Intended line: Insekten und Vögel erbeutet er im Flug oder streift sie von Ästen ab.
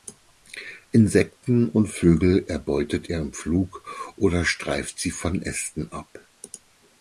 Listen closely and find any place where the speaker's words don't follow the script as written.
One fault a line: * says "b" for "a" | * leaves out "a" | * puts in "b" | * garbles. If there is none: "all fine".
all fine